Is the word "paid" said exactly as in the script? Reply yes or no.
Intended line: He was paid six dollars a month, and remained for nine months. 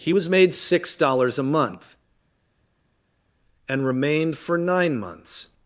no